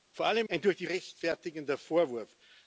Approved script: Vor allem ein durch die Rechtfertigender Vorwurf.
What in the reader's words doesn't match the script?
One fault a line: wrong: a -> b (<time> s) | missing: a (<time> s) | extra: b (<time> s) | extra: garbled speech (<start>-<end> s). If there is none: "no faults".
no faults